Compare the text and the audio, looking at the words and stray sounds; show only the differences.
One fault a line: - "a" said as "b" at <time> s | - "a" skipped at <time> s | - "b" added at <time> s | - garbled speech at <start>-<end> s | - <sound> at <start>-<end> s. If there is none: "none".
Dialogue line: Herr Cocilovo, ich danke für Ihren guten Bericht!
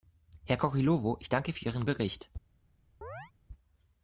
- "guten" skipped at 1.9 s
- chirp at 3.0-3.3 s